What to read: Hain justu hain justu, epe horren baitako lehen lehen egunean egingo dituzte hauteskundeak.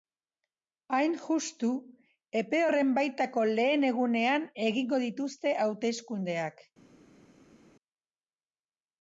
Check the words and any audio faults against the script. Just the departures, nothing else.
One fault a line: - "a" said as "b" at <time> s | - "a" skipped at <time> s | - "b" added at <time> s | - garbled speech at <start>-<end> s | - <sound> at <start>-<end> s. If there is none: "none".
- "hain justu" skipped at 1.7 s
- "lehen" skipped at 3.8 s